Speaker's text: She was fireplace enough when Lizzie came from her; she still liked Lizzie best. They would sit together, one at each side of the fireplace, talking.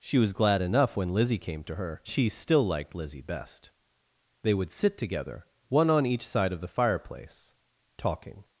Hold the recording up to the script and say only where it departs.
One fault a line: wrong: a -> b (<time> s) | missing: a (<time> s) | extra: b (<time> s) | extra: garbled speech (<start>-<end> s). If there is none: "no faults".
wrong: fireplace -> glad (0.3 s)
wrong: from -> to (1.6 s)
wrong: at -> on (5.9 s)